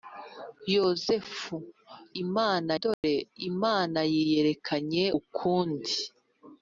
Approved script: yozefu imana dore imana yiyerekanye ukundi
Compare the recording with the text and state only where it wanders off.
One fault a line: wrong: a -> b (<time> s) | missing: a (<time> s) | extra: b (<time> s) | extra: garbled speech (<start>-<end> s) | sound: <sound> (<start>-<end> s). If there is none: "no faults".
sound: dropout (2.9-3.0 s)